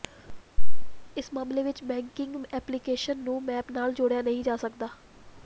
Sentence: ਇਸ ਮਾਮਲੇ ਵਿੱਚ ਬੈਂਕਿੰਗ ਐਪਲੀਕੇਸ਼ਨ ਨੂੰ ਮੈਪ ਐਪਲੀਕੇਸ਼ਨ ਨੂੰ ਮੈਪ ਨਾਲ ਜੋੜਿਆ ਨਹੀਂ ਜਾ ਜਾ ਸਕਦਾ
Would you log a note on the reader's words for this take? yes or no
yes